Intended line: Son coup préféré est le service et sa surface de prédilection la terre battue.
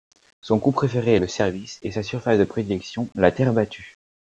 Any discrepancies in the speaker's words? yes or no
no